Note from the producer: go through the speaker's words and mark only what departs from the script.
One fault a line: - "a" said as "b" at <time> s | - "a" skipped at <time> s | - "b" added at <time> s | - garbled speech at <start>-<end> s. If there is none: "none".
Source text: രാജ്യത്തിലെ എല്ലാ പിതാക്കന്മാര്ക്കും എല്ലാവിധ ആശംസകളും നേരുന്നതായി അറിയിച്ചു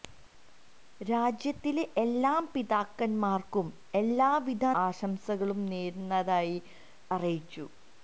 none